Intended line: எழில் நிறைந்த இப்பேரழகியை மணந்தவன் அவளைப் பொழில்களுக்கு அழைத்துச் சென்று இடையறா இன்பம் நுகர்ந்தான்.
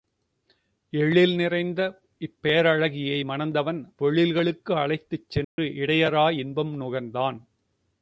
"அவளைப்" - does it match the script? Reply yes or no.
no